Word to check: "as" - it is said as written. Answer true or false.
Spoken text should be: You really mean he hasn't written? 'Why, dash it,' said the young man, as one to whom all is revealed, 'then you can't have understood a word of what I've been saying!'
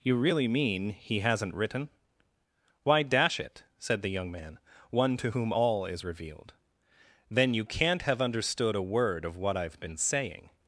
false